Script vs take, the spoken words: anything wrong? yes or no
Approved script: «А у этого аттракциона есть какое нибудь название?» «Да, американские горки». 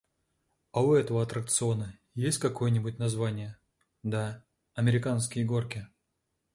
no